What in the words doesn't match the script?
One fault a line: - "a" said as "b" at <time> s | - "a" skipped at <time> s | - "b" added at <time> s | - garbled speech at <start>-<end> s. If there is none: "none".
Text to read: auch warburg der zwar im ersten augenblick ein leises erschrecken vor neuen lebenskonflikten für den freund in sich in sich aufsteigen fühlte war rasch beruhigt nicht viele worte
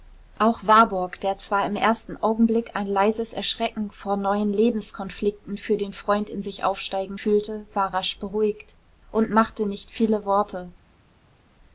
- "in sich" skipped at 6.6 s
- "und machte" added at 9.1 s